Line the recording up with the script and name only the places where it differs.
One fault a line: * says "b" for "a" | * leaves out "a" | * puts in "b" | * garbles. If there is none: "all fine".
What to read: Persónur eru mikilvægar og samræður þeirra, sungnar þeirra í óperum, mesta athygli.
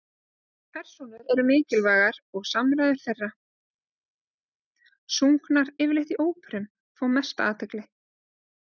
* says "yfirleitt" for "þeirra"
* puts in "fá"